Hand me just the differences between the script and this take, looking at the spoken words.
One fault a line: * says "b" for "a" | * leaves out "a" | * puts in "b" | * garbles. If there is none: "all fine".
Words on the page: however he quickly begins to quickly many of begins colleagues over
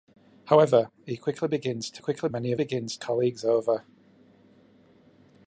all fine